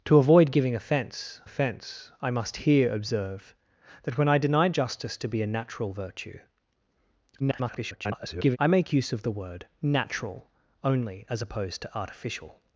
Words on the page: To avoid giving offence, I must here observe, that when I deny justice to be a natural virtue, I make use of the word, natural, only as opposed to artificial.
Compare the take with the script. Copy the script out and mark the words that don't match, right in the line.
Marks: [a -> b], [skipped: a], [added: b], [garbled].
To avoid giving offence, [added: offence] I must here observe, that when I deny justice to be a natural virtue, [garbled] I make use of the word, natural, only as opposed to artificial.